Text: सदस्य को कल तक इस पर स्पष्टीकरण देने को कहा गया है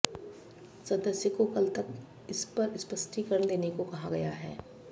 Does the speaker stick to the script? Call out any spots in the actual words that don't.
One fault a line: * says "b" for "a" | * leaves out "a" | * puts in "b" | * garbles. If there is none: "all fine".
all fine